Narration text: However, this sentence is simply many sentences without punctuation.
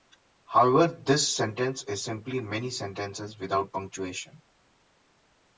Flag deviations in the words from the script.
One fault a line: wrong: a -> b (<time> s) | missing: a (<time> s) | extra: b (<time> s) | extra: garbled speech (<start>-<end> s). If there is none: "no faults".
no faults